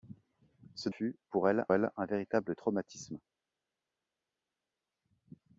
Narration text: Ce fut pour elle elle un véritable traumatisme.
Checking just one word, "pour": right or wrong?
right